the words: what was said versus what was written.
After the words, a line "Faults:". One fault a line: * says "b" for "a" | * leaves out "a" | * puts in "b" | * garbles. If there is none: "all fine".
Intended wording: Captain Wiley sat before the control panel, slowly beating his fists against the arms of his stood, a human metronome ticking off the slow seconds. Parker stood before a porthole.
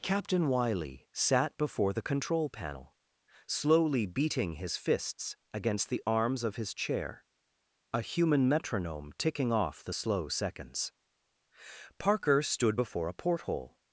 Captain Wiley sat before the control panel, slowly beating his fists against the arms of his chair, a human metronome ticking off the slow seconds. Parker stood before a porthole.
Faults:
* says "chair" for "stood"